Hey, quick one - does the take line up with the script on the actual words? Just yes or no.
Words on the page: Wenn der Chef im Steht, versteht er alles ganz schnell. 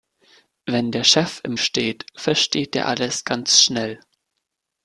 yes